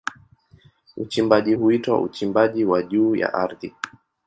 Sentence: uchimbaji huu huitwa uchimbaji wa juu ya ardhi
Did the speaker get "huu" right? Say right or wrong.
wrong